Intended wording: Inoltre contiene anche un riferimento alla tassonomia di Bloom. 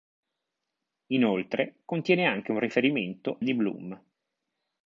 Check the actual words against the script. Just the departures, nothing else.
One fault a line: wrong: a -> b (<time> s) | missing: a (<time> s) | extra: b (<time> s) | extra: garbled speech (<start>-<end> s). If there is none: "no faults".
missing: alla tassonomia (3.4 s)